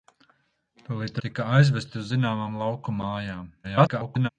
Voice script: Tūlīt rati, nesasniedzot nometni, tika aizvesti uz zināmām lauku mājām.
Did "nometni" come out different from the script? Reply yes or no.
yes